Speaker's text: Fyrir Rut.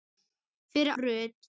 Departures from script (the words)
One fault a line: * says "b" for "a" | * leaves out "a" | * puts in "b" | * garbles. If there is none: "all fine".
all fine